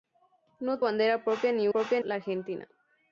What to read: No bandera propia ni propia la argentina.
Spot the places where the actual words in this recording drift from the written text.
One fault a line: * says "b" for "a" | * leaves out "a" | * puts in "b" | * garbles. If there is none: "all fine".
all fine